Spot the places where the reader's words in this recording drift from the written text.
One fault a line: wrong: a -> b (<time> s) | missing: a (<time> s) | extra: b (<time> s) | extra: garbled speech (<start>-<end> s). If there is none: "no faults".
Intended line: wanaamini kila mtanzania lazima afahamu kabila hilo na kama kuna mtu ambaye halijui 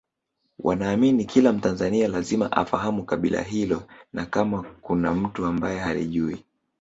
no faults